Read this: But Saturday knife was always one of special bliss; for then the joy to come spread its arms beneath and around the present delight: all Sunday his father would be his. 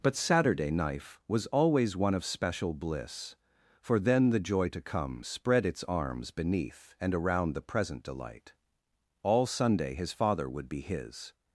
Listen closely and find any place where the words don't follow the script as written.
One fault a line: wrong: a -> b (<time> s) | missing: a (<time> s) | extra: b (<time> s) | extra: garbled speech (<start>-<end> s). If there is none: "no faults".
no faults